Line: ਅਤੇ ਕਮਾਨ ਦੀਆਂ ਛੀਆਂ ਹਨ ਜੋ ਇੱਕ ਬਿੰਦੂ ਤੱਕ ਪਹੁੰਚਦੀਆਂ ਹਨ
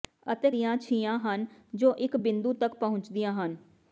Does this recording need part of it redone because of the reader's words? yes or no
yes